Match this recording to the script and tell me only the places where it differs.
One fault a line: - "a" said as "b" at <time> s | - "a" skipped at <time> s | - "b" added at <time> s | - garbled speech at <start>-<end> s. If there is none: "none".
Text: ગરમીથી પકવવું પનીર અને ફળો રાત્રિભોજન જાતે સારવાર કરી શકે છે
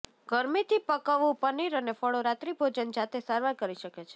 none